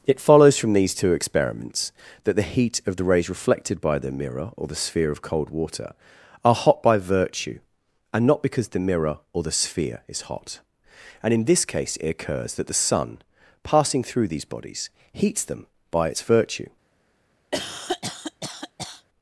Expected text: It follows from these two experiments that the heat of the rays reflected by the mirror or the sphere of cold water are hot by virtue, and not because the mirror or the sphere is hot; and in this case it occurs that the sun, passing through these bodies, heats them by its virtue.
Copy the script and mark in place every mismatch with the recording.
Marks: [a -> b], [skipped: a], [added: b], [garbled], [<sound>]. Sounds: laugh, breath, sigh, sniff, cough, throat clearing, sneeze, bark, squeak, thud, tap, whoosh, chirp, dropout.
It follows from these two experiments that the heat of the rays reflected by the mirror or the sphere of cold water are hot by virtue, and not because the mirror or the sphere is hot; and in this case it occurs that the sun, passing through these bodies, heats them by its virtue. [cough]